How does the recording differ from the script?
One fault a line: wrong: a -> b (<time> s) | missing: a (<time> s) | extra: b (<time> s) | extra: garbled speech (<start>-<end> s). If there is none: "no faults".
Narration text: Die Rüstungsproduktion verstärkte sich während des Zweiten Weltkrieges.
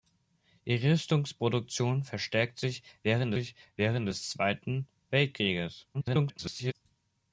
extra: sich während (3.3 s)
extra: garbled speech (5.9-6.7 s)